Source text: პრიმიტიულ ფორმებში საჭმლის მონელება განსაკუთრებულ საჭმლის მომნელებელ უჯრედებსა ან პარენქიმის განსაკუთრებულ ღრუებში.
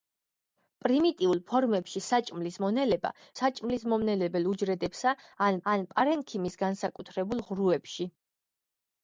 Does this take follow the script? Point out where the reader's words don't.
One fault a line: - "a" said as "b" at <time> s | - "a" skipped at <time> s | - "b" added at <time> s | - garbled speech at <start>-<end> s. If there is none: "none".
- "განსაკუთრებულ" skipped at 3.1 s
- "ან" added at 5.7 s